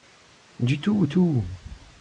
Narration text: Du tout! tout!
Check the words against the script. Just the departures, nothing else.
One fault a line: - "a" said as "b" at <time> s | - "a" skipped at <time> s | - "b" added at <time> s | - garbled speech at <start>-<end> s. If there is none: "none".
none